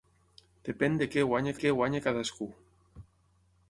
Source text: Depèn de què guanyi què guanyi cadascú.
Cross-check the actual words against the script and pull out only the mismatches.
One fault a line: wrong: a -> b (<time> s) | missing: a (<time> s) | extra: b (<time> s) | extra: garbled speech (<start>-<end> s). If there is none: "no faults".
no faults